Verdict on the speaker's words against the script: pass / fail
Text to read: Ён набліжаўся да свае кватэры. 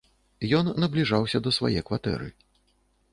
pass